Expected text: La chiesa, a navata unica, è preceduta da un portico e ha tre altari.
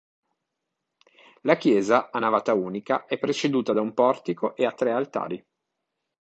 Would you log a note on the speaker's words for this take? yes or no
no